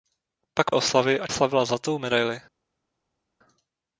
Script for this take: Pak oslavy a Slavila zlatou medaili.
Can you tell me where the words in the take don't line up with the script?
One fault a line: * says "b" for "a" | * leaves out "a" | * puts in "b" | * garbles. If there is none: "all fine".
all fine